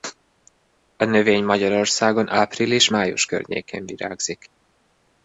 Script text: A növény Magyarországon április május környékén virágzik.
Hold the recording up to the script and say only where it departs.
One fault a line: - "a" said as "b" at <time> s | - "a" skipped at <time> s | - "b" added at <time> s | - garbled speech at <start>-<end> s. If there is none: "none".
none